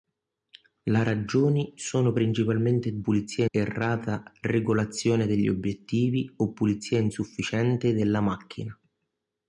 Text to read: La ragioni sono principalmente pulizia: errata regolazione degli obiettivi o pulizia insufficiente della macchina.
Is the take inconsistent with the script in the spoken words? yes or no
no